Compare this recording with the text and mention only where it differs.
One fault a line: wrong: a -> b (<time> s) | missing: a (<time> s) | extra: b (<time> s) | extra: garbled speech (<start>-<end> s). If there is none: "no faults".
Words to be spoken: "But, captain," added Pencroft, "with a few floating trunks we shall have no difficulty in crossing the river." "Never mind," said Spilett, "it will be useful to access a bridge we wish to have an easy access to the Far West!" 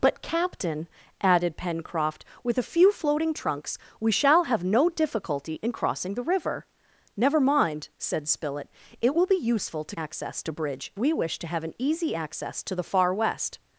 no faults